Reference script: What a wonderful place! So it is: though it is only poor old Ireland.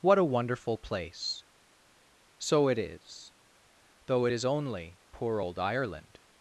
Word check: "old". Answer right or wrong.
right